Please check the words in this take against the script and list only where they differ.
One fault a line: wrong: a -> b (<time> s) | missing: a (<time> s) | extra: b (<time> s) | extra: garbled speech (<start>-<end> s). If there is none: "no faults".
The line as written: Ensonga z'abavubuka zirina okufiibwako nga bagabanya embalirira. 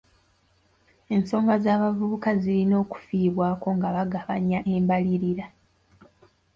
no faults